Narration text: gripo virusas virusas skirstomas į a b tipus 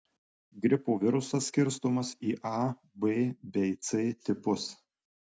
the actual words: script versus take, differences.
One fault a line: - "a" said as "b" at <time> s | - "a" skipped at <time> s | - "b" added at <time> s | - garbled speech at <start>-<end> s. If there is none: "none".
- "virusas" skipped at 1.5 s
- "bei c" added at 3.6 s